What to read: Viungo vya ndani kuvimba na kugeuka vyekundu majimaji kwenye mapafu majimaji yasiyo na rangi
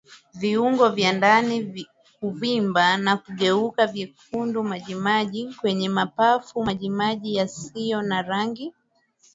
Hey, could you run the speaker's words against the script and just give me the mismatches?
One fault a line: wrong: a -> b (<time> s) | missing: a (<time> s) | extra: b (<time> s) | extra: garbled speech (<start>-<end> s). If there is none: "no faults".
no faults